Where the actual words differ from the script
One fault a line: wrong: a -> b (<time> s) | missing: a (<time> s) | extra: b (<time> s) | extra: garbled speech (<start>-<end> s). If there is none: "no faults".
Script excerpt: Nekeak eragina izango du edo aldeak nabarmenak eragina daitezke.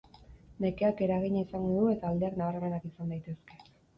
wrong: edo -> eta (1.9 s)
wrong: eragina -> izan (2.9 s)